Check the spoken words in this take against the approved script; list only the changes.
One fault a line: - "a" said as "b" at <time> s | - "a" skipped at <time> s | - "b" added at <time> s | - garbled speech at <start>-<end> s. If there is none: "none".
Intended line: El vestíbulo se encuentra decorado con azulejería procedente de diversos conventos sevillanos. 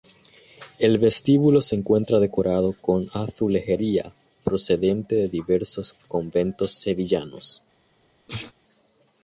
none